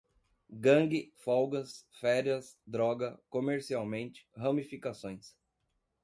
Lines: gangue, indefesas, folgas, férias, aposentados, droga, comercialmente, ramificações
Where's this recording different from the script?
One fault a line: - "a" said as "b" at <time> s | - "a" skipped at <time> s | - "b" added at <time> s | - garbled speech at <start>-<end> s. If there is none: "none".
- "indefesas" skipped at 1.1 s
- "aposentados" skipped at 2.6 s